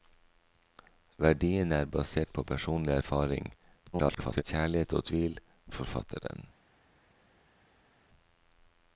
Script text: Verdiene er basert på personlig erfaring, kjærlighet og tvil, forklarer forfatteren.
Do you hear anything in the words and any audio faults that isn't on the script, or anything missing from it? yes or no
yes